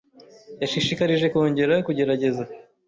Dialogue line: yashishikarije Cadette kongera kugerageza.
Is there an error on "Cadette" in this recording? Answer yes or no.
yes